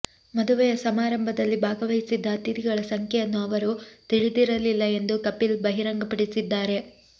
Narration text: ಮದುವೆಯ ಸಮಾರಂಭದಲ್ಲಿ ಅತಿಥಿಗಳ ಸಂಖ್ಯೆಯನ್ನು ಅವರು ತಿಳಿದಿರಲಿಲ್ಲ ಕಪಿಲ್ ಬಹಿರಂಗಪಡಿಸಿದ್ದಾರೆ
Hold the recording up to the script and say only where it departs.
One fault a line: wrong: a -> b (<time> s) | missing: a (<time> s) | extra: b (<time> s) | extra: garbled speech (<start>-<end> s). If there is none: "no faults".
extra: ಭಾಗವಹಿಸಿದ್ದ (1.6 s)
extra: ಎಂದು (5.0 s)